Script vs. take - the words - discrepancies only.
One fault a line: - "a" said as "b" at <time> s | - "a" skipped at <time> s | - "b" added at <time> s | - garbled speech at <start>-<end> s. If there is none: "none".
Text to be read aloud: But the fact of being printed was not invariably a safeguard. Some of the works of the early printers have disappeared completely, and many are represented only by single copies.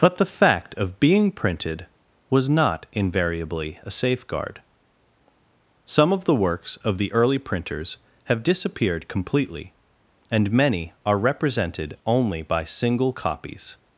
none